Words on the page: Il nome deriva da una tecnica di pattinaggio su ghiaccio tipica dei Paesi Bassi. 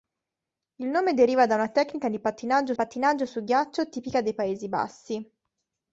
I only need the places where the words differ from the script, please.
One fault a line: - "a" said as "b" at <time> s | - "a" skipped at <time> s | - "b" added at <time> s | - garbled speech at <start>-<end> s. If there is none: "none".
- "pattinaggio" added at 2.7 s